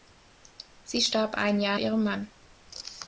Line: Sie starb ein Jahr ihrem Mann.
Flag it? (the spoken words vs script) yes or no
no